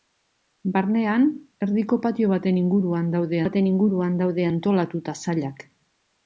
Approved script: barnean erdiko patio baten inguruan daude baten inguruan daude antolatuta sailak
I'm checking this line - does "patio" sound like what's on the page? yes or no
yes